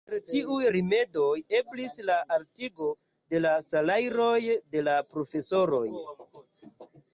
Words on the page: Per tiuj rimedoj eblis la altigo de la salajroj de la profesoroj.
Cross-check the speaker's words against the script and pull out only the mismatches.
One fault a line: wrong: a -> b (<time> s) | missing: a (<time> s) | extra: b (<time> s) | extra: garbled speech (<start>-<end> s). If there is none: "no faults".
no faults